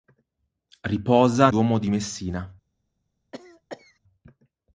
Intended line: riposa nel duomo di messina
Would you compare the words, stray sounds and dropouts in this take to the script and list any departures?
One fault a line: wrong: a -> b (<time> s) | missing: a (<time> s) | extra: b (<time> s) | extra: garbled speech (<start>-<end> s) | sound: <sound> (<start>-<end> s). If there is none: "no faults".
missing: nel (1.5 s)
sound: cough (3.3-4.0 s)